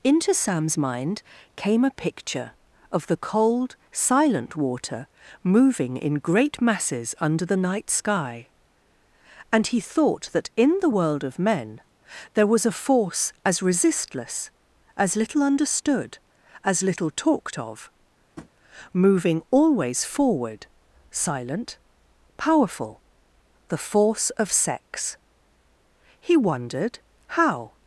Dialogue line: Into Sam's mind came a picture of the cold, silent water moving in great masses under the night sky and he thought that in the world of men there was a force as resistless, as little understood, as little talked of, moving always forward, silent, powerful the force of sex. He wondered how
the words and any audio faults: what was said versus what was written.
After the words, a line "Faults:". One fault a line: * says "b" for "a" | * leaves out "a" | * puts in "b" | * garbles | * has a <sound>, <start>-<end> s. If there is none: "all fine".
Into Sam's mind came a picture of the cold, silent water moving in great masses under the night sky and he thought that in the world of men there was a force as resistless, as little understood, as little talked of, moving always forward, silent, powerful the force of sex. He wondered how
Faults:
* has a tap, 18.4-18.5 s